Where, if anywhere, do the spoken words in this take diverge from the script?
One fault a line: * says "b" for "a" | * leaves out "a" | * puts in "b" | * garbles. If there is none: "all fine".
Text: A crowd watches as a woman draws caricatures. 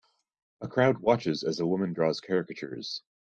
all fine